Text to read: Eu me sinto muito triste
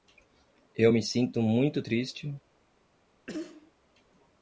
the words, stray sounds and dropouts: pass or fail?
fail